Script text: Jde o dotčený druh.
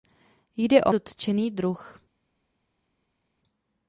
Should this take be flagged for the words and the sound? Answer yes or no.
no